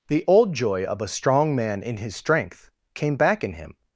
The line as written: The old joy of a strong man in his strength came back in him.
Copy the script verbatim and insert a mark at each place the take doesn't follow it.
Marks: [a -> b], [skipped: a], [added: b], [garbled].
The old joy of a strong man in his strength came back in him.